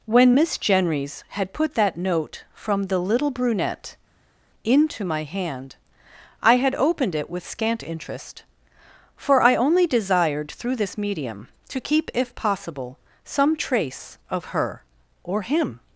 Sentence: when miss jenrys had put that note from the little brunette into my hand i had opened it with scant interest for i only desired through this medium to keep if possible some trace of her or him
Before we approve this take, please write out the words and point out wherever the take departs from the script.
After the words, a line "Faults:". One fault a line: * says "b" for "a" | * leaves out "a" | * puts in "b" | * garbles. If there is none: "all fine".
when miss jenrys had put that note from the little brunette into my hand i had opened it with scant interest for i only desired through this medium to keep if possible some trace of her or him
Faults:
all fine